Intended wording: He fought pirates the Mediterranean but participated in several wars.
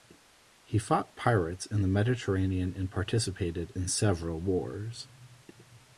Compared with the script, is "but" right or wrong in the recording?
wrong